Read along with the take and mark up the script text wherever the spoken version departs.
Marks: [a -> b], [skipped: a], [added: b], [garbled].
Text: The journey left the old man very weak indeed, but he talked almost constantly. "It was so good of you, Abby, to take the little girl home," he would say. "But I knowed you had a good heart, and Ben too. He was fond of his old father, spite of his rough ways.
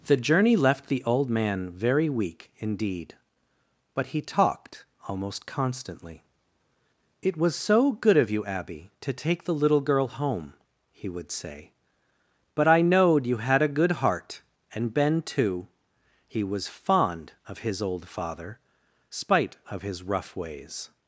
The journey left the old man very weak indeed, but he talked almost constantly. "It was so good of you, Abby, to take the little girl home," he would say. "But I knowed you had a good heart, and Ben too. He was fond of his old father, spite of his rough ways.